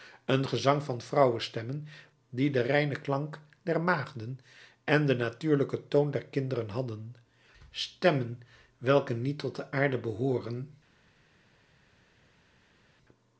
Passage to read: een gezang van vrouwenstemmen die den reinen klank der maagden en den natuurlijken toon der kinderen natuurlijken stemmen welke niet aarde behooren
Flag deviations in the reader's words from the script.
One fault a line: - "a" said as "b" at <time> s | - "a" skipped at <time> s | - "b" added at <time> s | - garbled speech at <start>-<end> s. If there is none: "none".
- "natuurlijken" said as "hadden" at 6.7 s
- "tot de" added at 9.4 s